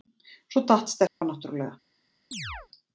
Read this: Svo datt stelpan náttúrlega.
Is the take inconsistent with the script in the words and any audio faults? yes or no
yes